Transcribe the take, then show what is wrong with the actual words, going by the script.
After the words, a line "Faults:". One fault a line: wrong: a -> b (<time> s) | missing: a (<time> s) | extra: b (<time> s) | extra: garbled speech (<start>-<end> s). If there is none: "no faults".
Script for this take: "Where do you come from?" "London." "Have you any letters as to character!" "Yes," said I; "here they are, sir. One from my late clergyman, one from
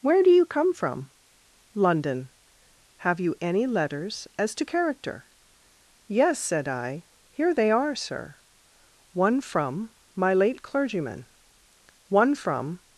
"Where do you come from?" "London." "Have you any letters as to character!" "Yes," said I; "here they are, sir. One from my late clergyman, one from
Faults:
no faults